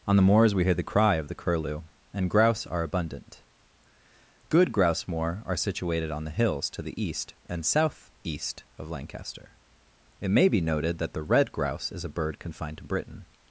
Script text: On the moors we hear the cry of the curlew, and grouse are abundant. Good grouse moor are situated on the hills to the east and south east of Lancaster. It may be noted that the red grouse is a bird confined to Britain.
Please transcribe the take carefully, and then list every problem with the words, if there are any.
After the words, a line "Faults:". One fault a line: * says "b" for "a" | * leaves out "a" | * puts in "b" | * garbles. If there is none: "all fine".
On the moors we hear the cry of the curlew, and grouse are abundant. Good grouse moor are situated on the hills to the east and south east of Lancaster. It may be noted that the red grouse is a bird confined to Britain.
Faults:
all fine